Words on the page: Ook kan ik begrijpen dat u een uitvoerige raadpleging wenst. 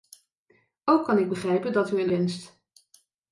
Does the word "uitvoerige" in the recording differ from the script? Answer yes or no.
yes